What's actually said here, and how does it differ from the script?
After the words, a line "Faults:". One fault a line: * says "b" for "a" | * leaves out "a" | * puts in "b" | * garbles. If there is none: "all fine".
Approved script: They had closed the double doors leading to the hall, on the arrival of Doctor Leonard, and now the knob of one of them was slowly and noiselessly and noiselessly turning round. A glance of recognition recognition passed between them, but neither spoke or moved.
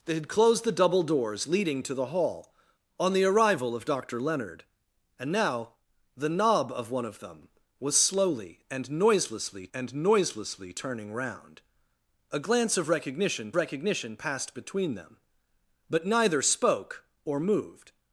They had closed the double doors leading to the hall, on the arrival of Doctor Leonard, and now the knob of one of them was slowly and noiselessly and noiselessly turning round. A glance of recognition recognition passed between them, but neither spoke or moved.
Faults:
all fine